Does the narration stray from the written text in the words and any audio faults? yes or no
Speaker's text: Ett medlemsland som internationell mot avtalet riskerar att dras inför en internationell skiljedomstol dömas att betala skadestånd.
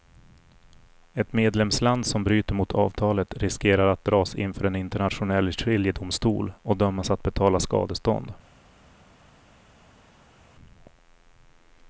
yes